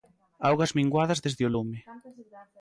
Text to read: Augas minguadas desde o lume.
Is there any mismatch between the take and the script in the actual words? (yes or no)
no